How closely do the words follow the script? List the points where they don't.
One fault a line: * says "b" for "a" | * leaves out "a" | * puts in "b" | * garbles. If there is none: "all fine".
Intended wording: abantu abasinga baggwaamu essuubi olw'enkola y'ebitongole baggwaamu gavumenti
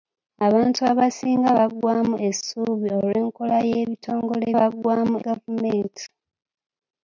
all fine